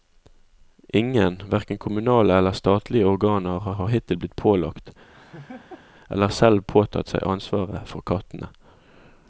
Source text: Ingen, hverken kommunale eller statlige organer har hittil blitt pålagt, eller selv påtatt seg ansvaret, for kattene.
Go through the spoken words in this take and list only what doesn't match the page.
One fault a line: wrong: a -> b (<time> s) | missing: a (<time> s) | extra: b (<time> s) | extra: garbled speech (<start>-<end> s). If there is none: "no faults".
extra: har (3.8 s)